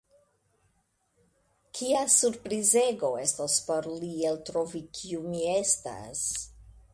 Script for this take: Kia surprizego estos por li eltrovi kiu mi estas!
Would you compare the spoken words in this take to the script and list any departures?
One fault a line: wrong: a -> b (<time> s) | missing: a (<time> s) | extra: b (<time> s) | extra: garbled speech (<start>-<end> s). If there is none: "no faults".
no faults